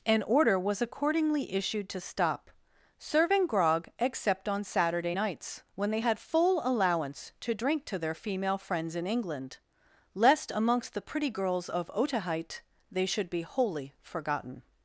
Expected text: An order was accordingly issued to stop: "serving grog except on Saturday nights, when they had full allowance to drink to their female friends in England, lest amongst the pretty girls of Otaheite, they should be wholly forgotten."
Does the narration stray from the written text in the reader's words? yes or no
no